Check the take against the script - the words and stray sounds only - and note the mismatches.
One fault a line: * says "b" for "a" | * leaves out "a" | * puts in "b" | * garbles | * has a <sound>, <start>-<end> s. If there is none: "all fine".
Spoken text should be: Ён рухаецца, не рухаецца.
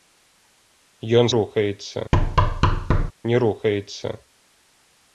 * has a thud, 2.1-3.1 s